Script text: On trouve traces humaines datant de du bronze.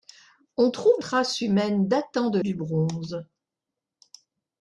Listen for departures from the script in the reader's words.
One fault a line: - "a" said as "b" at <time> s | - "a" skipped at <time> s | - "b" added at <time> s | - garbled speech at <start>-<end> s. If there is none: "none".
none